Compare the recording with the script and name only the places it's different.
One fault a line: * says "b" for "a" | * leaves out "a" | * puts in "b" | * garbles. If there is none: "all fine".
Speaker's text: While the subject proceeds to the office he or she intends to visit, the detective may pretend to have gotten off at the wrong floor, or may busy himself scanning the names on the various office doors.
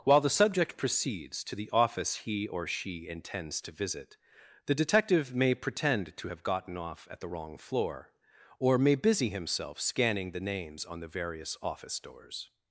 all fine